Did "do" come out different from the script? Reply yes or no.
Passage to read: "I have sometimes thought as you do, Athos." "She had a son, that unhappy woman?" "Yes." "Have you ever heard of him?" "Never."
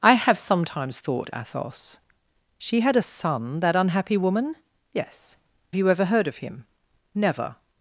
yes